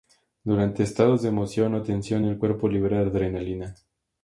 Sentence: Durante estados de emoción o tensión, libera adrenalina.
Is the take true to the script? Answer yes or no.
no